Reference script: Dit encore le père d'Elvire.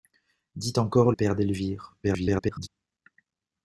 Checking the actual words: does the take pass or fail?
fail